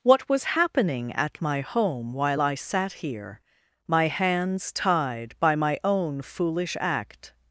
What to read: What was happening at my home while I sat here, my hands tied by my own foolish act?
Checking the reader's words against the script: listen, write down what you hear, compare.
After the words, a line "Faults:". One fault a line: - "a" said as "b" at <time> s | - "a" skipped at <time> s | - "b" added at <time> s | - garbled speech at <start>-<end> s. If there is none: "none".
What was happening at my home while I sat here, my hands tied by my own foolish act?
Faults:
none